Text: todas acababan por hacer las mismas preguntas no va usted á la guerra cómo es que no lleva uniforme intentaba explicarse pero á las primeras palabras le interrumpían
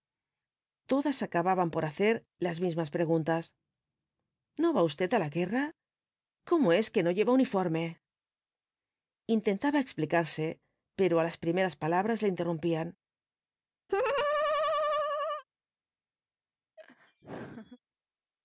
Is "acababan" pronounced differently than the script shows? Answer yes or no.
no